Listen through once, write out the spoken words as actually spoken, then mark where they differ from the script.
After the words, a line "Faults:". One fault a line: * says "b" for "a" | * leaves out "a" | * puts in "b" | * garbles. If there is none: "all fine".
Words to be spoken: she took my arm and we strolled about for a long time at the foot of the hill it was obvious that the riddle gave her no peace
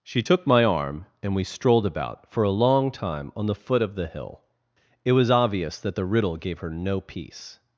she took my arm and we strolled about for a long time on the foot of the hill it was obvious that the riddle gave her no peace
Faults:
* says "on" for "at"